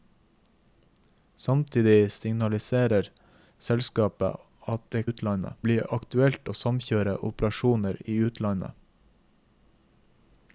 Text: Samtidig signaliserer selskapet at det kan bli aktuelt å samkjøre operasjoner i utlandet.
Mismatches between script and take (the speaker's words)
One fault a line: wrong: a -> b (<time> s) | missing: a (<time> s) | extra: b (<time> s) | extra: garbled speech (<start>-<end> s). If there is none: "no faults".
wrong: kan -> utlandet (5.1 s)